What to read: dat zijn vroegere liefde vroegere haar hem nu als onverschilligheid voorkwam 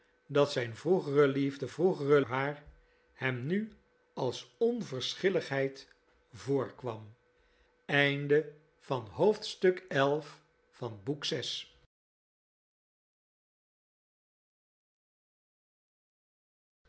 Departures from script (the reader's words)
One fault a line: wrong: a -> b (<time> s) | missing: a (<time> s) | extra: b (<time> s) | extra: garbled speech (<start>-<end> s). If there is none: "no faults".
no faults